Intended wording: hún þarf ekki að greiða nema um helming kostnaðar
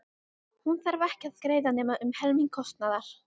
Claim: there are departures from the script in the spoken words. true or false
false